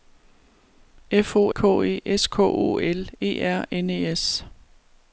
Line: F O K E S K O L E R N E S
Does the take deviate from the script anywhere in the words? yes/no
no